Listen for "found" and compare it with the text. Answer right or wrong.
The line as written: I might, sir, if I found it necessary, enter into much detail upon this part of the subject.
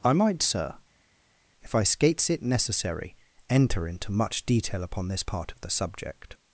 wrong